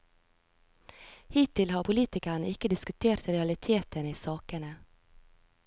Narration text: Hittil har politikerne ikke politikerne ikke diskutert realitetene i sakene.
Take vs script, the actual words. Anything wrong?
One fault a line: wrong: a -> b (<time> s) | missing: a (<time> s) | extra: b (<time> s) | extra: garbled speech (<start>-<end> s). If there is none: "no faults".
missing: politikerne ikke (2.7 s)